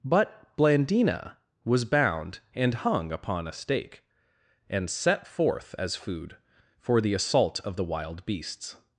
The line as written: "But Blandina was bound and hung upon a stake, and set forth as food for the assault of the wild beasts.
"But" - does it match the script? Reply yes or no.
yes